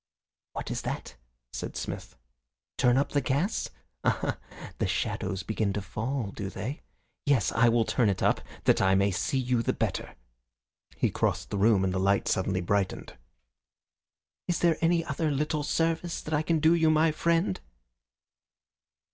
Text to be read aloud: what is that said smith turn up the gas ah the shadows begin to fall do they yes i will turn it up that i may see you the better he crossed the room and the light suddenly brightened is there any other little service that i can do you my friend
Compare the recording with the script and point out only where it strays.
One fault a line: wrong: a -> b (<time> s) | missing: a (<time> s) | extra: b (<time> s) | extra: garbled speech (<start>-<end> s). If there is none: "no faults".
no faults